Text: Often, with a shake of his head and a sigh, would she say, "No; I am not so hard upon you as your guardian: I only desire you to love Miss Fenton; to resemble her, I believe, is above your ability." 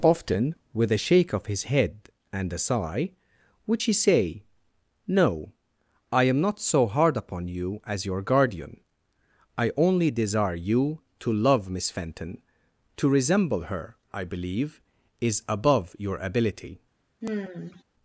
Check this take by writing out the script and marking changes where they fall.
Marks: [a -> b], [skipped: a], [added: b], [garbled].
Often, with a shake of his head and a sigh, would she say, "No; I am not so hard upon you as your guardian: I only desire you to love Miss Fenton; to resemble her, I believe, is above your ability."